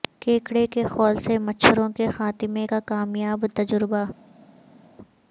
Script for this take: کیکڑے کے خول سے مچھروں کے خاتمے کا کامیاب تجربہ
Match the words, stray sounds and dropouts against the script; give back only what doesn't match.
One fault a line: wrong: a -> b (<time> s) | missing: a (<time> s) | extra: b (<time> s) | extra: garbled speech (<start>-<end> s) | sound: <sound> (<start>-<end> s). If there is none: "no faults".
no faults